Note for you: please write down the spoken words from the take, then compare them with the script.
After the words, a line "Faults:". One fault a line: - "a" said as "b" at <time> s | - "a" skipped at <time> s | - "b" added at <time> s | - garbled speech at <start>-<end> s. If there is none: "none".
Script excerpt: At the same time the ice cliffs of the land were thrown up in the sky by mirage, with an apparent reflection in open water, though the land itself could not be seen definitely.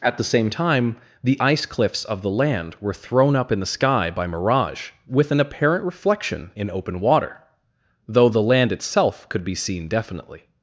At the same time the ice cliffs of the land were thrown up in the sky by mirage, with an apparent reflection in open water, though the land itself could be seen definitely.
Faults:
- "not" skipped at 9.4 s